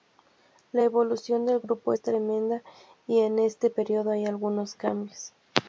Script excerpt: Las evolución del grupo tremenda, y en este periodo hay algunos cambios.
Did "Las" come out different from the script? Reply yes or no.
yes